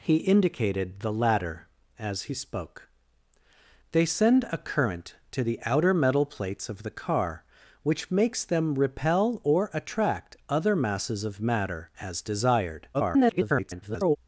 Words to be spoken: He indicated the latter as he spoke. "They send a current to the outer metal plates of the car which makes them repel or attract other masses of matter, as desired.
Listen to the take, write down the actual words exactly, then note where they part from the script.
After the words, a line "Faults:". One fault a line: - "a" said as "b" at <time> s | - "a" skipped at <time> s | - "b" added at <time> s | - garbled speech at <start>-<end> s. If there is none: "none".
He indicated the latter as he spoke. "They send a current to the outer metal plates of the car which makes them repel or attract other masses of matter, as desired. [garbled]
Faults:
- garbled speech at 12.9-14.2 s